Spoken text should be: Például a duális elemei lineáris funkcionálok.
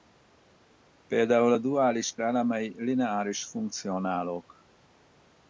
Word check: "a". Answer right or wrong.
right